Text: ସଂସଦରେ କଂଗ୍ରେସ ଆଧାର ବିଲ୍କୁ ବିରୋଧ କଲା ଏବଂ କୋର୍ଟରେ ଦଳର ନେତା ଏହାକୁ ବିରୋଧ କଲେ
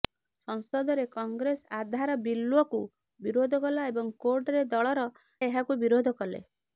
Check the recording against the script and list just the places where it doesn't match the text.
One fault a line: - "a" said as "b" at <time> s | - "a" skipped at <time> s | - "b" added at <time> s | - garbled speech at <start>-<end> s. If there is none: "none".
- "ନେତା" skipped at 5.1 s